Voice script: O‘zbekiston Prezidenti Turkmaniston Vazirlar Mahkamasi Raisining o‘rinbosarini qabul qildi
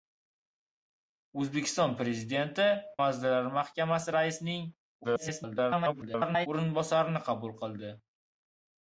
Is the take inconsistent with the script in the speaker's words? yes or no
yes